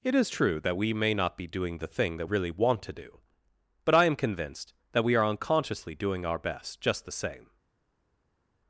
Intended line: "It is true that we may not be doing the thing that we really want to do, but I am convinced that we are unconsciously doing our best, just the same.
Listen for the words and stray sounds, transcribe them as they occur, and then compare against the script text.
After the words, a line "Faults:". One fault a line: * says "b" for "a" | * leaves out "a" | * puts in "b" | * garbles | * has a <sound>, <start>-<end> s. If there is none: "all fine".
"It is true that we may not be doing the thing that really want to do, but I am convinced that we are unconsciously doing our best, just the same.
Faults:
* leaves out "we"